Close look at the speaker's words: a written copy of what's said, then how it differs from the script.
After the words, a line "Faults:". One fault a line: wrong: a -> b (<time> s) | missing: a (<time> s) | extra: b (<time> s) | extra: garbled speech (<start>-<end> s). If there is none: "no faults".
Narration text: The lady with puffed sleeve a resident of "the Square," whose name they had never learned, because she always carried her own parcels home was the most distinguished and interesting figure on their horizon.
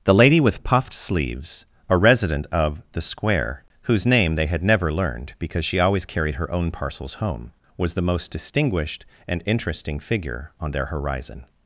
The lady with puffed sleeves a resident of "the Square," whose name they had never learned, because she always carried her own parcels home was the most distinguished and interesting figure on their horizon.
Faults:
wrong: sleeve -> sleeves (0.9 s)